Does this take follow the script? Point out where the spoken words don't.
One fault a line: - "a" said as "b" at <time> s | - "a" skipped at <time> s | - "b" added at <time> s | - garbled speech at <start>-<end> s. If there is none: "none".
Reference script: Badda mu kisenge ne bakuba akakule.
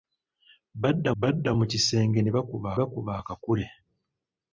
- "badda" added at 1.2 s
- "bakuba" added at 2.8 s